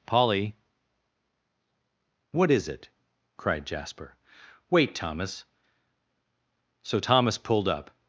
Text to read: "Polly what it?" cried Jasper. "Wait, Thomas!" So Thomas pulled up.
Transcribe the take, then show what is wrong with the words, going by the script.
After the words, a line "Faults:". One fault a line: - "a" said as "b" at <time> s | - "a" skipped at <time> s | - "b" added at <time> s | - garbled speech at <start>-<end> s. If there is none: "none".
"Polly what is it?" cried Jasper. "Wait, Thomas!" So Thomas pulled up.
Faults:
- "is" added at 2.5 s